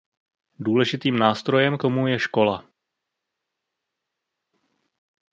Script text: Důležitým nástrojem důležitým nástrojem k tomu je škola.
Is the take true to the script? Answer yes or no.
no